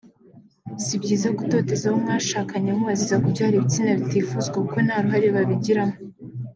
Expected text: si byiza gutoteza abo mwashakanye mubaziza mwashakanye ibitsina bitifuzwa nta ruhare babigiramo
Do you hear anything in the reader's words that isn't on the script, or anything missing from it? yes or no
yes